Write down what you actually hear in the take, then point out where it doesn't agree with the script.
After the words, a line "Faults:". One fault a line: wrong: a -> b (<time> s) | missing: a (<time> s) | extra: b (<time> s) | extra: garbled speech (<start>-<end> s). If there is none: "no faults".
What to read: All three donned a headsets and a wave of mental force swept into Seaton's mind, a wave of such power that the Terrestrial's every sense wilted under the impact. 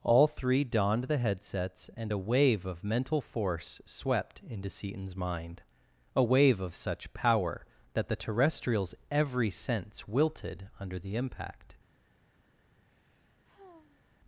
All three donned the headsets and a wave of mental force swept into Seaton's mind, a wave of such power that the Terrestrial's every sense wilted under the impact.
Faults:
wrong: a -> the (1.0 s)